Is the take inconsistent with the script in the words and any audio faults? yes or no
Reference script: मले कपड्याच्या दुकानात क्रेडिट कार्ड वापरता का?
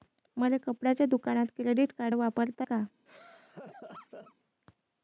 yes